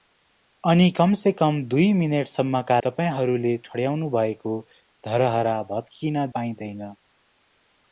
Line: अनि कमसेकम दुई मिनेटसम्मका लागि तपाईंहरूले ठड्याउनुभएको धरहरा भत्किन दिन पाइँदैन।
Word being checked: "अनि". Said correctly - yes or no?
yes